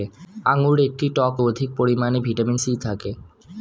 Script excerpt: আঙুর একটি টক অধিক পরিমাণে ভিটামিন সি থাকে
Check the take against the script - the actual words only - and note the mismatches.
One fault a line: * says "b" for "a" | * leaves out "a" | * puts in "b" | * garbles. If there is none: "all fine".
all fine